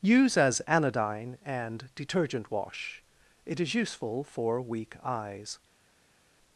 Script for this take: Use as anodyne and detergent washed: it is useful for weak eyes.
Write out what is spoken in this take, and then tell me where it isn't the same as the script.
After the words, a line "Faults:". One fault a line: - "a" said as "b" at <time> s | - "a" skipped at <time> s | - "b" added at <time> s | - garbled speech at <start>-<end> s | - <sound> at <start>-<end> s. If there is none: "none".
Use as anodyne and detergent wash: it is useful for weak eyes.
Faults:
- "washed" said as "wash" at 2.5 s